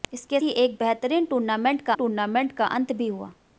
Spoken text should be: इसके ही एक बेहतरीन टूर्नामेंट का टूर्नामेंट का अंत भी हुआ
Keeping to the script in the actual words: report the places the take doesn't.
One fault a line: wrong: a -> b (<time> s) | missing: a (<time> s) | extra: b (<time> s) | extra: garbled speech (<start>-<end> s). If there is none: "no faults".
no faults